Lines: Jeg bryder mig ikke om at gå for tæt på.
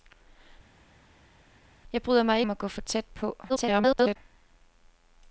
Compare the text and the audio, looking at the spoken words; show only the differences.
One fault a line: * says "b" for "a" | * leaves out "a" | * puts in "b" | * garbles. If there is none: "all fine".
* leaves out "ikke"
* garbles